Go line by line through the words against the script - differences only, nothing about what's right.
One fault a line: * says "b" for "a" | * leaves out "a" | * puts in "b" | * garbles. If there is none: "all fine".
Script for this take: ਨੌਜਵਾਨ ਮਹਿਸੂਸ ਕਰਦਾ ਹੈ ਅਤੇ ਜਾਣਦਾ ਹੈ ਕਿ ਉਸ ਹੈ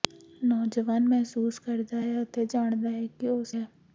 all fine